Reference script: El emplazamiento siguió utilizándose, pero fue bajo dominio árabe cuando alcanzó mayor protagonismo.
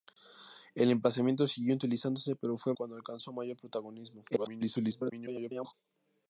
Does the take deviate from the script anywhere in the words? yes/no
yes